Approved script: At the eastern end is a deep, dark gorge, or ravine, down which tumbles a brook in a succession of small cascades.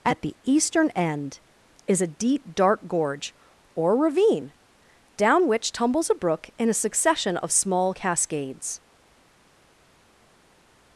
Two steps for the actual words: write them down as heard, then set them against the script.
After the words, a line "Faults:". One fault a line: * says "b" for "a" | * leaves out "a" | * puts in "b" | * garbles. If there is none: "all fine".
At the eastern end is a deep, dark gorge, or ravine, down which tumbles a brook in a succession of small cascades.
Faults:
all fine